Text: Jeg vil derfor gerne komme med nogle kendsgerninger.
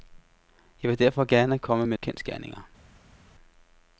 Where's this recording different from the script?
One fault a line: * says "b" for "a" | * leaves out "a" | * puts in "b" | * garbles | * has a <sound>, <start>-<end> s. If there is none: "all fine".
* leaves out "nogle"